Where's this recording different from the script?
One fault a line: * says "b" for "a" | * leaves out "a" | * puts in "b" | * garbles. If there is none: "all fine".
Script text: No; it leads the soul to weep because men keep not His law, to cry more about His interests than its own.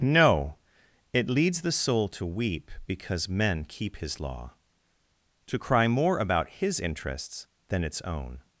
* leaves out "not"